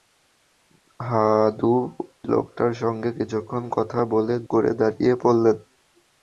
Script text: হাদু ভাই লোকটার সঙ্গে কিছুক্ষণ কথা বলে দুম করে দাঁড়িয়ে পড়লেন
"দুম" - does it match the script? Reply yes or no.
no